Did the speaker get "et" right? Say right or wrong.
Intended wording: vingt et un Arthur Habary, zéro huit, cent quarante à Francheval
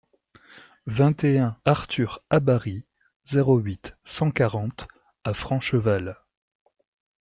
right